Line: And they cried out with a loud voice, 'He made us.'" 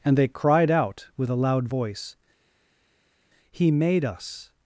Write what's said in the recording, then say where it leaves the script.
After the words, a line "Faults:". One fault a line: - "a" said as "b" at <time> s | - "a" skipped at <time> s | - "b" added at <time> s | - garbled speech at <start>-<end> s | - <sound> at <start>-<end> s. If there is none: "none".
And they cried out with a loud voice, 'He made us.'"
Faults:
none